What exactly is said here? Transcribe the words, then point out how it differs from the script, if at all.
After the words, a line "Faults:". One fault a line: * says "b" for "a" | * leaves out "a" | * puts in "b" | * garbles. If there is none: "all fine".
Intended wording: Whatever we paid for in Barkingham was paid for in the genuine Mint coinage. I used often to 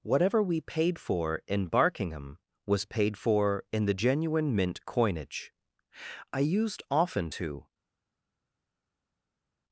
Whatever we paid for in Barkingham was paid for in the genuine Mint coinage. I used often to
Faults:
all fine